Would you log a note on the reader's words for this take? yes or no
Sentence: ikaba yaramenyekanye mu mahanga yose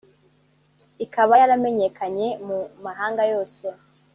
no